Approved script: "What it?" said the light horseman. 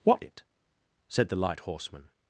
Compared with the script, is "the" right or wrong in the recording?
right